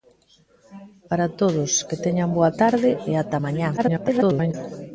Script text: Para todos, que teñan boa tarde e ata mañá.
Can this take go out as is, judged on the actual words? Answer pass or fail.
fail